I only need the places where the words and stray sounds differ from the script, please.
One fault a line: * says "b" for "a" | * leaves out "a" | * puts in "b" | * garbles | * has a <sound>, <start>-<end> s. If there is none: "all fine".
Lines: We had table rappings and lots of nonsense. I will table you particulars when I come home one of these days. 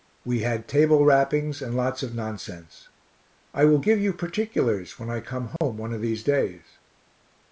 * says "give" for "table"
* has a dropout, 5.6-5.6 s